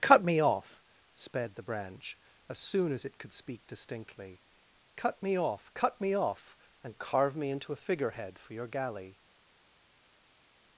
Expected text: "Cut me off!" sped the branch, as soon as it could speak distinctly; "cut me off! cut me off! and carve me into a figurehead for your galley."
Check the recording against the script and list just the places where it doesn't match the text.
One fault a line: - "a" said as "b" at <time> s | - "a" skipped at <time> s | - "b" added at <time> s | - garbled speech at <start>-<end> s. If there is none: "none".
none